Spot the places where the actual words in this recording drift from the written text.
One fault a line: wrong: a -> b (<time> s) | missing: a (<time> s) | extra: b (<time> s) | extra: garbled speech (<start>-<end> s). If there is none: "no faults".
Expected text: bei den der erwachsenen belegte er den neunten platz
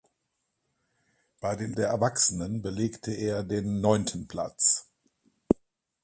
no faults